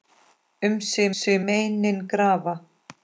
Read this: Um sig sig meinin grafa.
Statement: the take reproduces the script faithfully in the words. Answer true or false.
true